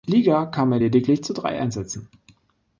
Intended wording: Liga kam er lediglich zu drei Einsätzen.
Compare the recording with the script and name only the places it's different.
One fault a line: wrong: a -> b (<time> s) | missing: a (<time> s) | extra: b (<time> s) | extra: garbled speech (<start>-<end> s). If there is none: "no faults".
no faults